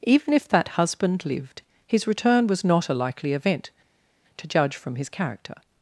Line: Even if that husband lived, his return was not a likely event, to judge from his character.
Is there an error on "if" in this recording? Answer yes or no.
no